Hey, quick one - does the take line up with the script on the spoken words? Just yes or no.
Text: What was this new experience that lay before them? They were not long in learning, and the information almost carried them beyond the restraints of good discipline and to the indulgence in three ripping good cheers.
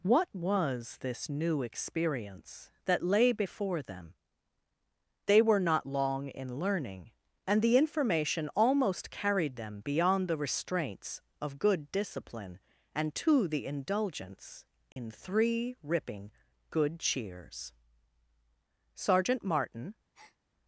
no